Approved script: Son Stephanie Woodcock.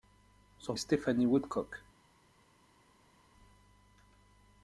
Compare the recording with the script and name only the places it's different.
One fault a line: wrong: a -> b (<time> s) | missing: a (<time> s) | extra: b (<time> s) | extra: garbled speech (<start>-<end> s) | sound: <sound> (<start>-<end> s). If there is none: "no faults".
no faults